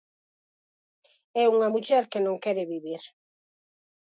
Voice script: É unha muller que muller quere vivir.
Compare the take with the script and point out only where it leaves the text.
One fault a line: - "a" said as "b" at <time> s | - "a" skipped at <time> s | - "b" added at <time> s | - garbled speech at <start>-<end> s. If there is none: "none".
- "muller" said as "non" at 2.3 s